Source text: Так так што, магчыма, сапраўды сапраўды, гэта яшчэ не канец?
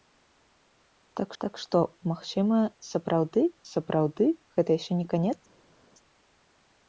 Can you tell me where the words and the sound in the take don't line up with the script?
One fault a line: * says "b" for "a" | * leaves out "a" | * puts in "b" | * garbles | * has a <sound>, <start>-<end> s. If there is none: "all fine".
all fine